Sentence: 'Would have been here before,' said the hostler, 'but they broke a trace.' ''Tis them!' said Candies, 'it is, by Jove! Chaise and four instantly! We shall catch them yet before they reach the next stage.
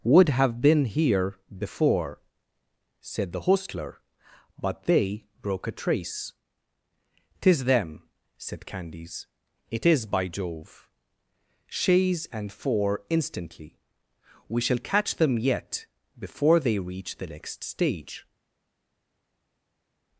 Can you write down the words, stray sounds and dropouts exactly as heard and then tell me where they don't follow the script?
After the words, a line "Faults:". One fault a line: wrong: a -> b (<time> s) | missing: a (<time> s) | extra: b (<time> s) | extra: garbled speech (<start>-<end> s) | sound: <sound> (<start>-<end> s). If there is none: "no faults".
'Would have been here before,' said the hostler, 'but they broke a trace.' ''Tis them!' said Candies, 'it is, by Jove! Chaise and four instantly! We shall catch them yet before they reach the next stage.
Faults:
no faults